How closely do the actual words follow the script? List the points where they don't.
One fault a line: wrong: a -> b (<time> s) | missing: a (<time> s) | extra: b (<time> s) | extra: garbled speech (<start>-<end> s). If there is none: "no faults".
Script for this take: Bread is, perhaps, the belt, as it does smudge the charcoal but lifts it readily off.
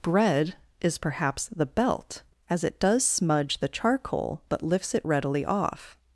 no faults